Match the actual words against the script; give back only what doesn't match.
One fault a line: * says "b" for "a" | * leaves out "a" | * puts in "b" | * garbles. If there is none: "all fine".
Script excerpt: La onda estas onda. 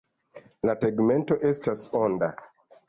* says "tegmento" for "onda"